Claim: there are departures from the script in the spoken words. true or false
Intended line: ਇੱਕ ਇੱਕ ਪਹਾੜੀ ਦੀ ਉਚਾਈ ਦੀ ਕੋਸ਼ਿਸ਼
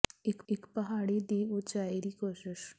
false